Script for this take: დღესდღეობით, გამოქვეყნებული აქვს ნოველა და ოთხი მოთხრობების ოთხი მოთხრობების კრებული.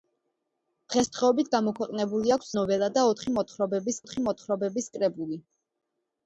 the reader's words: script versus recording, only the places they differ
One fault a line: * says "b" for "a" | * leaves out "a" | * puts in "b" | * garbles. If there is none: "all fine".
all fine